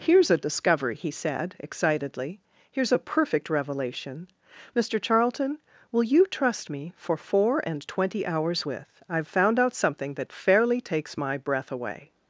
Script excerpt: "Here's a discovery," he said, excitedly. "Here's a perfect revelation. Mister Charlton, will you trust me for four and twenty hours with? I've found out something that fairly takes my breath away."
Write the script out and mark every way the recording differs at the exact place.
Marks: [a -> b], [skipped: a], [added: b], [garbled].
"Here's a discovery," he said, excitedly. "Here's a perfect revelation. Mister Charlton, will you trust me for four and twenty hours with? I've found out something that fairly takes my breath away."